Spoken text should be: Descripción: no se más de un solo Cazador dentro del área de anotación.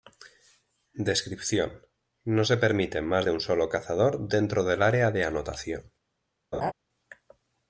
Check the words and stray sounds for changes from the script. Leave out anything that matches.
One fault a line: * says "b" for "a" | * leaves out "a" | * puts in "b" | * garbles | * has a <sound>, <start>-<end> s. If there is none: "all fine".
* puts in "permite"
* has a laugh, 6.5-6.7 s